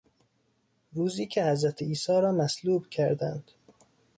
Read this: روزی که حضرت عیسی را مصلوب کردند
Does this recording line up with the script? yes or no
yes